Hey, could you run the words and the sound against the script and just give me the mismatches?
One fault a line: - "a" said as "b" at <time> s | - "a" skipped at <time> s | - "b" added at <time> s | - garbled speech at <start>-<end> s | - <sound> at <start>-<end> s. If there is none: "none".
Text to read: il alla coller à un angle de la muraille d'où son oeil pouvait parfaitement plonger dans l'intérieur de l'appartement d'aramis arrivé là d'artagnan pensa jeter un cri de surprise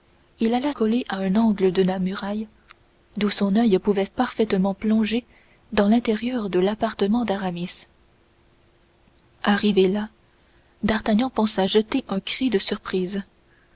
none